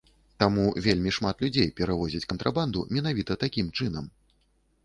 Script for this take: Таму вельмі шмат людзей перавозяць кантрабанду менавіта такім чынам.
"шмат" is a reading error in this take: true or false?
false